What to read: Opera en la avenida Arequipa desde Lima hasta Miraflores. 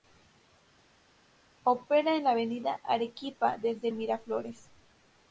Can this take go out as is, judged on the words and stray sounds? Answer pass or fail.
fail